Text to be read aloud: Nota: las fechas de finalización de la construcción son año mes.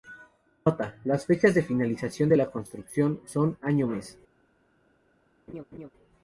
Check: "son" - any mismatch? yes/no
no